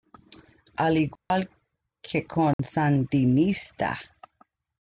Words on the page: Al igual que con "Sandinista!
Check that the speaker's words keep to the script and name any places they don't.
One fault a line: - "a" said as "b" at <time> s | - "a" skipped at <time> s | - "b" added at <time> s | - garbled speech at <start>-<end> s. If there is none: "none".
none